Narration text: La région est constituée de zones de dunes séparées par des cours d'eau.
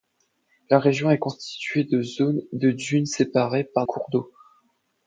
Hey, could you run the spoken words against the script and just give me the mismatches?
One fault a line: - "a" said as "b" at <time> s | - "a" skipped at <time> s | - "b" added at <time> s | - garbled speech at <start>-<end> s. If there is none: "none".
- "des" skipped at 3.8 s